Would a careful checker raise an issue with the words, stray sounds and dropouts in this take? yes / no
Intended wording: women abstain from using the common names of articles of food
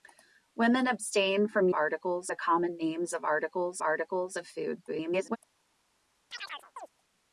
yes